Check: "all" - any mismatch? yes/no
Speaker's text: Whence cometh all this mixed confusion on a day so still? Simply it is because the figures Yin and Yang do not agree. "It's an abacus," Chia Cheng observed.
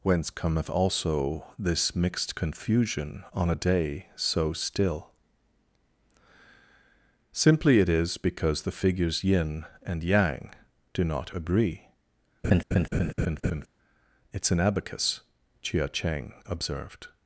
yes